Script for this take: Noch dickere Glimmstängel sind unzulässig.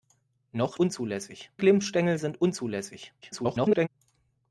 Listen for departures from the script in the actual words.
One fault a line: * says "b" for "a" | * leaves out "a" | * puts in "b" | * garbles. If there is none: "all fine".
* says "unzulässig" for "dickere"
* garbles